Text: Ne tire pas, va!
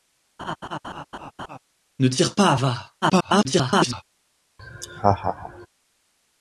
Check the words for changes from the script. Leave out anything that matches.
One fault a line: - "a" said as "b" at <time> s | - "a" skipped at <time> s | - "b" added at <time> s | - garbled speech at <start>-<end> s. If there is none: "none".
- garbled speech at 3.0-4.0 s